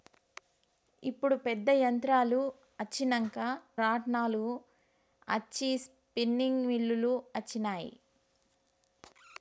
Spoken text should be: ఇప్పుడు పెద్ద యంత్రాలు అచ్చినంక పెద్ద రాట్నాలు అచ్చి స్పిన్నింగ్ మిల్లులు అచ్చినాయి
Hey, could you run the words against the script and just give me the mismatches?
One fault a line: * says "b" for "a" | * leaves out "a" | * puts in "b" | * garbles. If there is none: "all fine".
* leaves out "పెద్ద"